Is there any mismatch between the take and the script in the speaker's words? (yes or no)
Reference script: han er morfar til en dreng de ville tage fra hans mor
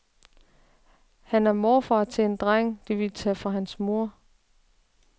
no